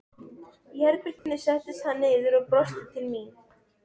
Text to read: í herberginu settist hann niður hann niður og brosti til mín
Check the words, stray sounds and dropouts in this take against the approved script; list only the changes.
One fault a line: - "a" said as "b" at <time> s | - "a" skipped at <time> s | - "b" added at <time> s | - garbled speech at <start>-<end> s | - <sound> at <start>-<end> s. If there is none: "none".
- dropout at 1.2-1.3 s
- "hann niður" skipped at 2.4 s